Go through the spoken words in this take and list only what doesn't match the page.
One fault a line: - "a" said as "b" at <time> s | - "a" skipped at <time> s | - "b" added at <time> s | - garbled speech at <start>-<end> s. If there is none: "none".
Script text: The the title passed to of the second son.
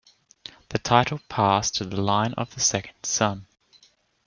- "the" skipped at 0.8 s
- "the line" added at 1.8 s